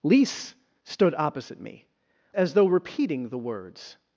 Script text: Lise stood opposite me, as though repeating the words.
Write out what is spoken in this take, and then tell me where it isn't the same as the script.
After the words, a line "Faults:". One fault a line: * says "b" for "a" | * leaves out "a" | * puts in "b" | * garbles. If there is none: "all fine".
Lise stood opposite me, as though repeating the words.
Faults:
all fine